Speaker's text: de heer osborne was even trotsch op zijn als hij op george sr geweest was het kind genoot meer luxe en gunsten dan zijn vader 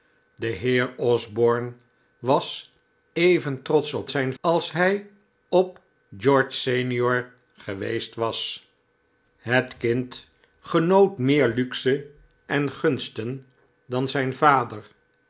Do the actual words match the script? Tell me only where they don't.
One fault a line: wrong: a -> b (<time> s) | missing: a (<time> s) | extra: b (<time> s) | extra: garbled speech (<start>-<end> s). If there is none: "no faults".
no faults